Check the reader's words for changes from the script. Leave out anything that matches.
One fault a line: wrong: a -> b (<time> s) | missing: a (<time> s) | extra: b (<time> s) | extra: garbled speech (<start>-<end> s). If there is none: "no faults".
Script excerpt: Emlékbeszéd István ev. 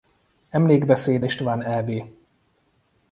no faults